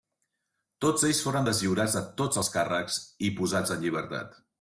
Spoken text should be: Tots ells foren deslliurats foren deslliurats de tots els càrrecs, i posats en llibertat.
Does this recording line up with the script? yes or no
no